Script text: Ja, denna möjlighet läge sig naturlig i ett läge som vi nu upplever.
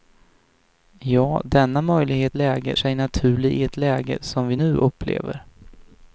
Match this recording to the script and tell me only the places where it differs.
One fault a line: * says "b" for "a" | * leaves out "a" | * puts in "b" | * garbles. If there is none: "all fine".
all fine